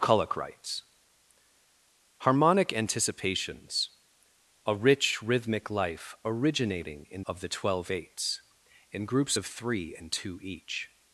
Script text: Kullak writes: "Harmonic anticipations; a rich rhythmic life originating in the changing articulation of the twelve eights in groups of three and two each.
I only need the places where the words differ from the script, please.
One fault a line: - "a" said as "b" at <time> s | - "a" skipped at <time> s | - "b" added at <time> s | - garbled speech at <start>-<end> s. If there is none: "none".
- "the changing articulation" skipped at 7.2 s